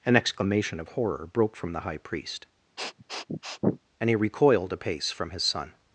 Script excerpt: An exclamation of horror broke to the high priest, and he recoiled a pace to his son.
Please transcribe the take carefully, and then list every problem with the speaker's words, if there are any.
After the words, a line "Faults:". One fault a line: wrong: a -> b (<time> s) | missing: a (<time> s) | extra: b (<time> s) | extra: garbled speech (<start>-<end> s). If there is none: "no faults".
An exclamation of horror broke from the high priest, and he recoiled a pace from his son.
Faults:
wrong: to -> from (1.6 s)
wrong: to -> from (5.1 s)